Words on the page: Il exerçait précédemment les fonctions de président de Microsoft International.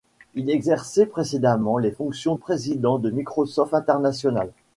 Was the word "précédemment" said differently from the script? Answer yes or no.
no